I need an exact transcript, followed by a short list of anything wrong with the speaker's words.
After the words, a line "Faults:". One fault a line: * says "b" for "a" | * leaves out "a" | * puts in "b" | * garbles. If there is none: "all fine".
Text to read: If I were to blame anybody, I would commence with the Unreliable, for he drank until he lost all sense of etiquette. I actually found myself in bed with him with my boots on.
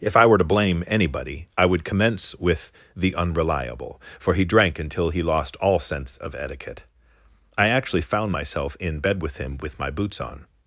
If I were to blame anybody, I would commence with the Unreliable, for he drank until he lost all sense of etiquette. I actually found myself in bed with him with my boots on.
Faults:
all fine